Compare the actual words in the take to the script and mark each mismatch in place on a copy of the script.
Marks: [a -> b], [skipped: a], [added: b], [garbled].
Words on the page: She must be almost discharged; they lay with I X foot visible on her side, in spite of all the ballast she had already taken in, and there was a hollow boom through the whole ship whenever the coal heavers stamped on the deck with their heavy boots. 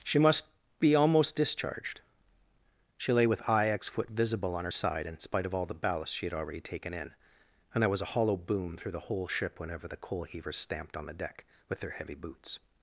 She must be almost discharged; [they -> she] lay with I X foot visible on her side, in spite of all the ballast she had already taken in, and there was a hollow boom through the whole ship whenever the coal heavers stamped on the deck with their heavy boots.